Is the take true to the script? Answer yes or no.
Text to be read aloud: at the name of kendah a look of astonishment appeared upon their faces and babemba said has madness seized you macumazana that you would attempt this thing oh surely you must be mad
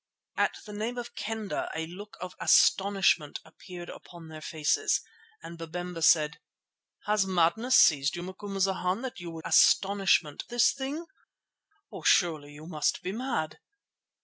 no